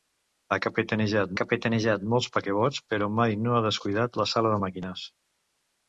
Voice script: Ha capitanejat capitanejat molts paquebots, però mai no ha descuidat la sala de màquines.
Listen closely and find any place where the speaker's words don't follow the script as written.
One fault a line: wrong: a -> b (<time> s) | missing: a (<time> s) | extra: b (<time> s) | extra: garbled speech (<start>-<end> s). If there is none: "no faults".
no faults